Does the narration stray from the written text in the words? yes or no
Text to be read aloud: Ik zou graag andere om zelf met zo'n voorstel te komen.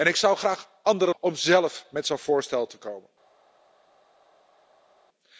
no